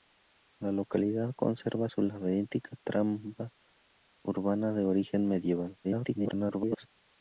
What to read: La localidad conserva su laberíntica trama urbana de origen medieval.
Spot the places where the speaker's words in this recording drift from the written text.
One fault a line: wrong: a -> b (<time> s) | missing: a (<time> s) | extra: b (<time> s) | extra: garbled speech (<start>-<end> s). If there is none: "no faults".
extra: garbled speech (5.8-6.9 s)